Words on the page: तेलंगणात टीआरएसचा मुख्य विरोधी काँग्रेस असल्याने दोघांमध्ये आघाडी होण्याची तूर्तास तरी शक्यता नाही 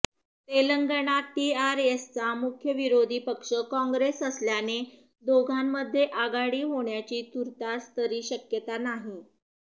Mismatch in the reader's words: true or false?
true